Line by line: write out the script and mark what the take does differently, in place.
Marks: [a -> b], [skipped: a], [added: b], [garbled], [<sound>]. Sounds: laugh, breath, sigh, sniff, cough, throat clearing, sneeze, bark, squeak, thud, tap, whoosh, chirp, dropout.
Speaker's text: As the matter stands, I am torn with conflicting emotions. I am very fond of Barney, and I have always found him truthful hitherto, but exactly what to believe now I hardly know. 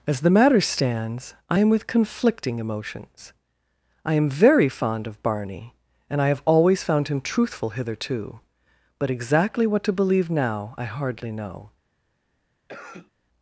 As the matter stands, I am [skipped: torn] with conflicting emotions. I am very fond of Barney, and I have always found him truthful hitherto, but exactly what to believe now I hardly know. [cough]